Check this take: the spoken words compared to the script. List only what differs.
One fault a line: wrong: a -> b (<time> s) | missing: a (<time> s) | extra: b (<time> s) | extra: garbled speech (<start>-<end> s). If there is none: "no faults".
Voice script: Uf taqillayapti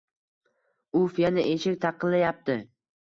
extra: yana eshik (1.2 s)